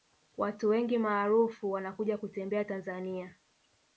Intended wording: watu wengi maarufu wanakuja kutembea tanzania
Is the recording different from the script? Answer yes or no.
no